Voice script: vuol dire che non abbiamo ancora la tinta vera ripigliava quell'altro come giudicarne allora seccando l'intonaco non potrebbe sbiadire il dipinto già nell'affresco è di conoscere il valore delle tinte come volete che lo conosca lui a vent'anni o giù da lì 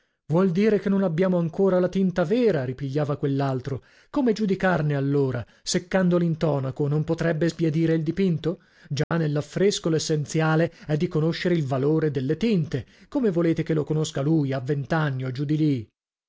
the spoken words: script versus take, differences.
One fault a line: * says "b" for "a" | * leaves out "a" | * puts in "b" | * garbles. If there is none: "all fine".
* puts in "l'essenziale"
* says "di" for "da"